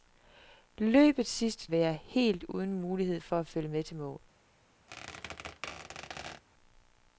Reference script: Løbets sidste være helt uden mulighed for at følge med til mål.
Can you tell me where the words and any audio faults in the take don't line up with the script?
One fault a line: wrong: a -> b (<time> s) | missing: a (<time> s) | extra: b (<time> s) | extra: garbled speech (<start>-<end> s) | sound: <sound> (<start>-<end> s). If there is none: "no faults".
sound: squeak (4.9-6.4 s)